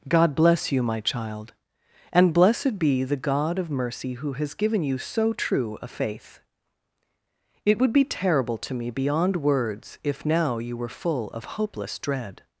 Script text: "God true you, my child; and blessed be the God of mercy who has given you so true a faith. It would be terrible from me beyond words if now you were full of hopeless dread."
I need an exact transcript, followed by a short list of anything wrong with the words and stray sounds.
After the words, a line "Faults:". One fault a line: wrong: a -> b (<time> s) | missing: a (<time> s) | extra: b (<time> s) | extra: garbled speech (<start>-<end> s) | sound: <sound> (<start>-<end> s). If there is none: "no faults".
"God bless you, my child; and blessed be the God of mercy who has given you so true a faith. It would be terrible to me beyond words if now you were full of hopeless dread."
Faults:
wrong: true -> bless (0.3 s)
wrong: from -> to (8.6 s)